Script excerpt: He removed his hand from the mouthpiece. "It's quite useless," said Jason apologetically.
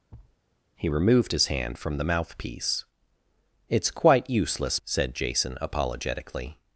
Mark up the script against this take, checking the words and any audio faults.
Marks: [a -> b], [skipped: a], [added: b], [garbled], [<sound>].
[thud] He removed his hand from the mouthpiece. "It's quite useless," said Jason apologetically.